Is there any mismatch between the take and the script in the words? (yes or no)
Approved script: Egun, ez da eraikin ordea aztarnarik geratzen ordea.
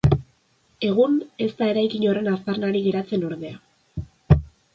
yes